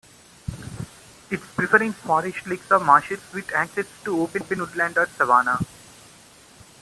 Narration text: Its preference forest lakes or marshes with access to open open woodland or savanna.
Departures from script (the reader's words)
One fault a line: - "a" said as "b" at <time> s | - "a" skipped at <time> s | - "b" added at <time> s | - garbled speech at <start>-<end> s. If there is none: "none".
none